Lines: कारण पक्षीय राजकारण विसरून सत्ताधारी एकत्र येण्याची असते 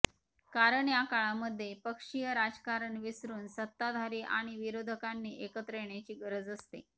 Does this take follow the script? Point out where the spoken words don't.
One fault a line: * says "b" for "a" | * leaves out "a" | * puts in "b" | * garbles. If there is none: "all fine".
* puts in "या काळामध्ये"
* puts in "आणि विरोधकांनी"
* puts in "गरज"